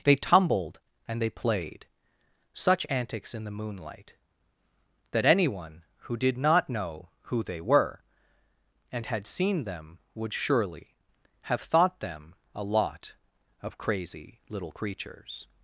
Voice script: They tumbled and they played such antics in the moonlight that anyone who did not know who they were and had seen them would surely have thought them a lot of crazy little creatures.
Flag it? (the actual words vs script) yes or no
no